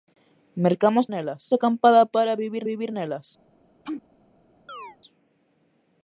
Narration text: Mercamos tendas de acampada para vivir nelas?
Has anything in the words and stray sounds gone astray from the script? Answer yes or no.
yes